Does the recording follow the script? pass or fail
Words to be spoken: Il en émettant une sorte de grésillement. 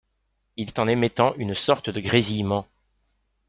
pass